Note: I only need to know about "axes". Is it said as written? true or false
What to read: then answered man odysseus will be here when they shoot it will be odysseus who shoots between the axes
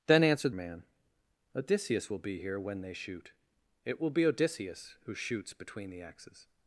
true